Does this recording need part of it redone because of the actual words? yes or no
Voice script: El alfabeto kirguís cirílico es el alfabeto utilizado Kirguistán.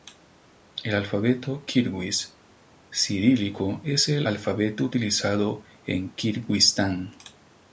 yes